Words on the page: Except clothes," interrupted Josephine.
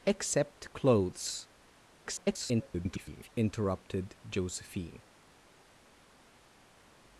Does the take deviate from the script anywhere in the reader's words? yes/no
yes